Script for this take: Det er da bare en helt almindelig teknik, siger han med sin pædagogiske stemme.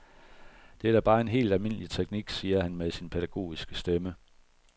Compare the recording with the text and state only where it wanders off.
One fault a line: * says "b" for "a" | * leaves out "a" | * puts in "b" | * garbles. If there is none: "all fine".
all fine